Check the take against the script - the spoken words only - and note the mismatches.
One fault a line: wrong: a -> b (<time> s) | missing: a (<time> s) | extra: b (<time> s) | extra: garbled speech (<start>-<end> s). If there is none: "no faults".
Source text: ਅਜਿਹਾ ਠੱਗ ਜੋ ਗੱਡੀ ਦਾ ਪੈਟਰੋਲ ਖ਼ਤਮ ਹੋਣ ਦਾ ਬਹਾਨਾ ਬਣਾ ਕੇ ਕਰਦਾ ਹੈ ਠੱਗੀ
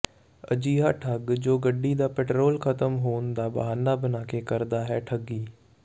no faults